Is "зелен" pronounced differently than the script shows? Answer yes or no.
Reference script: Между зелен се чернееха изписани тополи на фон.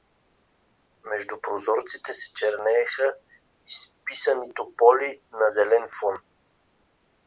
yes